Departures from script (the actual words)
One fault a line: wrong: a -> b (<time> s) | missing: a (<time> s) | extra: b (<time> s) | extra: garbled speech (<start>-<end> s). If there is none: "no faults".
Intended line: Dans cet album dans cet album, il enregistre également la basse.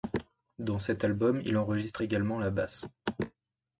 missing: dans cet album (1.4 s)